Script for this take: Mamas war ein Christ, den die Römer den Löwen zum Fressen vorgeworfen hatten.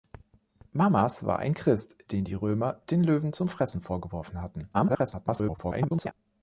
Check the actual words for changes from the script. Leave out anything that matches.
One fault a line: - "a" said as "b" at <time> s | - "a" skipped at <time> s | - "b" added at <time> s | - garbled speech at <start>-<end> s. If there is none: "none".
- garbled speech at 4.7-6.1 s